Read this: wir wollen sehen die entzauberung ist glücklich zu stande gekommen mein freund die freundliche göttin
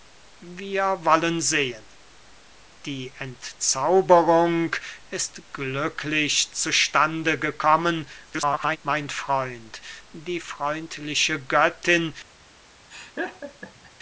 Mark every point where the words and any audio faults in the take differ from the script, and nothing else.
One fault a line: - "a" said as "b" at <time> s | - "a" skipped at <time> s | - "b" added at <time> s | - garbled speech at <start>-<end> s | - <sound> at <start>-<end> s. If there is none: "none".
- garbled speech at 8.3-8.8 s
- laugh at 12.9-13.9 s